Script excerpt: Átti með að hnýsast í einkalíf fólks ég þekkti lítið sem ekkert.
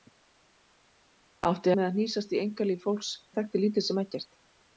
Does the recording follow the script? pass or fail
pass